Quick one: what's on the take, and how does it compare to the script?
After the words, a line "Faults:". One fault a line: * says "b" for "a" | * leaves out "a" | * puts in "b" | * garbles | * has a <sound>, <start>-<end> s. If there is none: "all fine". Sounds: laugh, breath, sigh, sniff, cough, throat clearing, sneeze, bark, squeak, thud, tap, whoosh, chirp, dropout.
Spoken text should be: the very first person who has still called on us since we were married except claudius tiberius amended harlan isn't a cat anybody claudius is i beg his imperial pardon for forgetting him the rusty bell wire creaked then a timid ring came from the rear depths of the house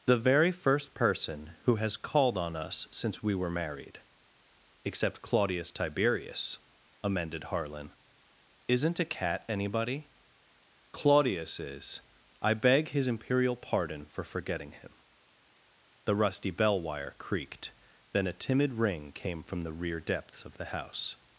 the very first person who has called on us since we were married except claudius tiberius amended harlan isn't a cat anybody claudius is i beg his imperial pardon for forgetting him the rusty bell wire creaked then a timid ring came from the rear depths of the house
Faults:
* leaves out "still"